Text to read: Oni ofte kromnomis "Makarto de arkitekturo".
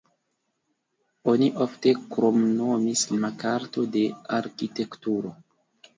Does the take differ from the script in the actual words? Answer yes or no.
no